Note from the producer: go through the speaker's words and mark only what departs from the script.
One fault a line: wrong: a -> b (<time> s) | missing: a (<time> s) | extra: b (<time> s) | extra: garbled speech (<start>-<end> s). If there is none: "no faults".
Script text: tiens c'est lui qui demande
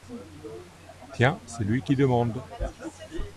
no faults